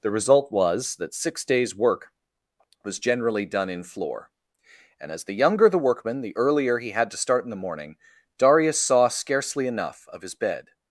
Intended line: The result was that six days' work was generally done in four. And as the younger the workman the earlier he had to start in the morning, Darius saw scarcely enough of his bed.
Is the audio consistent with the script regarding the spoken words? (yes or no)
no